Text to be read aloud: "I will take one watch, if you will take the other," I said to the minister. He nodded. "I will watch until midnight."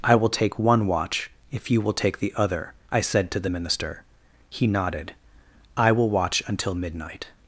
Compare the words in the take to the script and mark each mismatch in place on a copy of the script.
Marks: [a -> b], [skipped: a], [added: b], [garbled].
"I will take one watch, if you will take the other," I said to the minister. He nodded. "I will watch until midnight."